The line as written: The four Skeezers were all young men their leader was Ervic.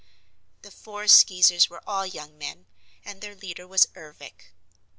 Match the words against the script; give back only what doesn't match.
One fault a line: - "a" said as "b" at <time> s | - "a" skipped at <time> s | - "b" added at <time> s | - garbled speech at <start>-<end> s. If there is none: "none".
- "and" added at 3.0 s